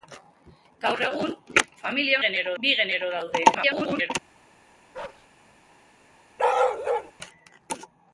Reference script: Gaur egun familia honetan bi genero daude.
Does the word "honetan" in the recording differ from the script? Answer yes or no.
yes